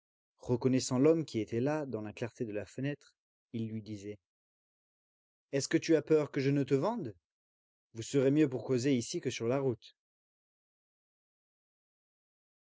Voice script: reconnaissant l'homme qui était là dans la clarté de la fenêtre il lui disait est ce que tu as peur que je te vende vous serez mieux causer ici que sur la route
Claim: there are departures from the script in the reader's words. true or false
true